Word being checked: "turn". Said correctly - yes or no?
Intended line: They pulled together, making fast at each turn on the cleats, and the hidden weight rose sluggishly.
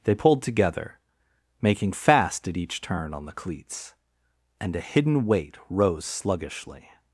yes